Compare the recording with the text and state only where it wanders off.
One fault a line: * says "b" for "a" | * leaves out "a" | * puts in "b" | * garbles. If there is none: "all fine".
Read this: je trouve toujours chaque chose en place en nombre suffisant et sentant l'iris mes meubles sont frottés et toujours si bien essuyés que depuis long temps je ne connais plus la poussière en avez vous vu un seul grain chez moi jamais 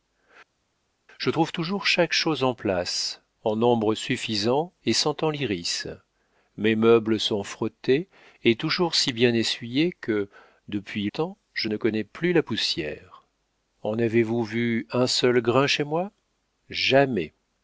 * leaves out "long"